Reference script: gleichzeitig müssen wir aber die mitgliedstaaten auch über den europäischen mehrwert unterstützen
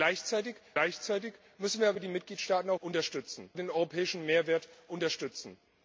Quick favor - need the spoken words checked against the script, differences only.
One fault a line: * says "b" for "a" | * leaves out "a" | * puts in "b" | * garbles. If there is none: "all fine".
* puts in "gleichzeitig"
* says "unterstützen" for "über"